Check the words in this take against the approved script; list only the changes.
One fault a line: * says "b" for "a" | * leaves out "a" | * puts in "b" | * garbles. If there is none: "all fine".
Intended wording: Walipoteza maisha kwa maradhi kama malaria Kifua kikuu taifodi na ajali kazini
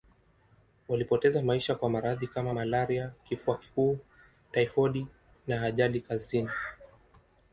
all fine